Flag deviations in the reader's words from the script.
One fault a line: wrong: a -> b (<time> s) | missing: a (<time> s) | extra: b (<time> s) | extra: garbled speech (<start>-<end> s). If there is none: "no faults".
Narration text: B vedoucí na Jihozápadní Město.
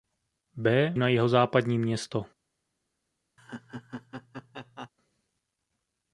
missing: vedoucí (0.9 s)